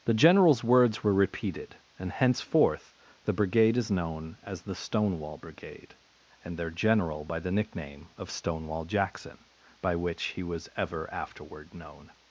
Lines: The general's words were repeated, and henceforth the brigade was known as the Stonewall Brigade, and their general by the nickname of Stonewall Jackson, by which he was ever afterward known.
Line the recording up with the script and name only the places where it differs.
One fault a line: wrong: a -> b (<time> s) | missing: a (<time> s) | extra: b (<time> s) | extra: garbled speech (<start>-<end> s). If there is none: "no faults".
wrong: was -> is (3.8 s)